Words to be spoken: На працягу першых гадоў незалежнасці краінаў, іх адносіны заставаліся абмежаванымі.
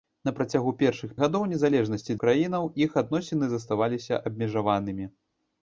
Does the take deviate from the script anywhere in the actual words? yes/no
no